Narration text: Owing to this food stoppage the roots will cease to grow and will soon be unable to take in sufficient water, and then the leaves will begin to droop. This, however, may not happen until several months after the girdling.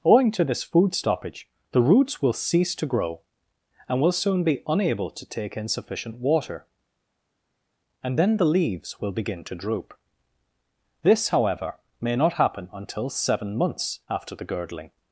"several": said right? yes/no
no